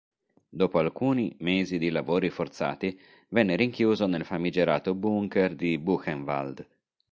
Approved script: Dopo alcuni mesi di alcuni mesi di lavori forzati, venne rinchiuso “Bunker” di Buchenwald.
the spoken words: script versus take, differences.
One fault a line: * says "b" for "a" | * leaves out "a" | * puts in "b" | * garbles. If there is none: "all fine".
* leaves out "alcuni mesi di"
* puts in "nel famigerato"